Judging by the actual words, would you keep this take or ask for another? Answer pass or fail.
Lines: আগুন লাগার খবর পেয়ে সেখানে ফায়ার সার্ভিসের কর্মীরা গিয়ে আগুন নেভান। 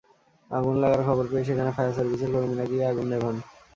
pass